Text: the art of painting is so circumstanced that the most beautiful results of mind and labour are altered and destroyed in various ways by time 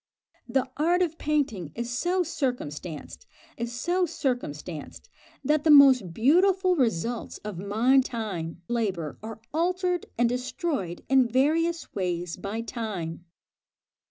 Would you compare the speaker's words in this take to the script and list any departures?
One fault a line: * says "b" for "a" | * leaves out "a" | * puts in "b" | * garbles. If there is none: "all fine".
* puts in "is so circumstanced"
* says "time" for "and"